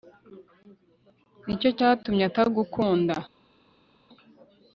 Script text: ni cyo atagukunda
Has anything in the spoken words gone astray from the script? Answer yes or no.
yes